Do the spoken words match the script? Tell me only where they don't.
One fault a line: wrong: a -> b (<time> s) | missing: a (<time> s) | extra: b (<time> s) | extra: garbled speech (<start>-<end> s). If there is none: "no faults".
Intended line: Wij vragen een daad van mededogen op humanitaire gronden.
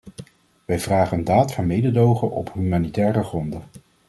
no faults